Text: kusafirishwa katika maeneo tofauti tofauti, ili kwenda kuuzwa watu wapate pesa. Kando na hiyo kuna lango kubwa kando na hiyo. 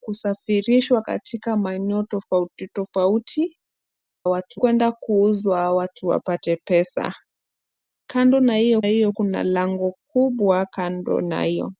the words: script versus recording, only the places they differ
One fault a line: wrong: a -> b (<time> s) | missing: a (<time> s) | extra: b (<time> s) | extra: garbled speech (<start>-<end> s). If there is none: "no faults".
wrong: ili -> watu (4.3 s)
extra: hiyo (8.9 s)